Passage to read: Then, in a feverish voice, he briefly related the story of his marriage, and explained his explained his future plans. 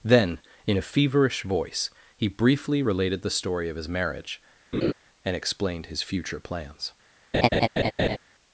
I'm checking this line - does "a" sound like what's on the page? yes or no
yes